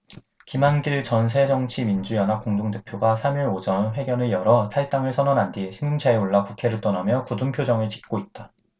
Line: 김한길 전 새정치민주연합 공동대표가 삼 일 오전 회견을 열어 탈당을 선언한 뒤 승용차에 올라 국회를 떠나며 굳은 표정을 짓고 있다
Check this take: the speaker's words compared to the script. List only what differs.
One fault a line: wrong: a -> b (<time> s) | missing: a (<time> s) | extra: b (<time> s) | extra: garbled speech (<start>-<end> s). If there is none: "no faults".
no faults